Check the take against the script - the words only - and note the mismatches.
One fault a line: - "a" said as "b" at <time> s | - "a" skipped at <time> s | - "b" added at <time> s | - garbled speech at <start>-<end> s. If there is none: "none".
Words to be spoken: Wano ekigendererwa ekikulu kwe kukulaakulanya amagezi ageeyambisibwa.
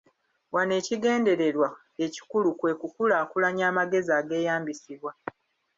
none